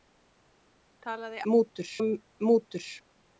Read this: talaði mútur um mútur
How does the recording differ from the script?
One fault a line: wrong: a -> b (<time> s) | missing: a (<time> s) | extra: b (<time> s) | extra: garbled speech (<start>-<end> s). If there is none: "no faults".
no faults